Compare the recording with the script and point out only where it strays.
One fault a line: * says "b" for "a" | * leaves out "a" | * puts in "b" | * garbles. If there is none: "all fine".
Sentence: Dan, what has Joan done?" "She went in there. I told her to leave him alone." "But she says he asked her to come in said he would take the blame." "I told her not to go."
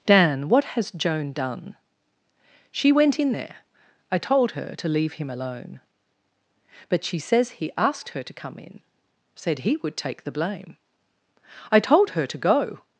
* leaves out "not"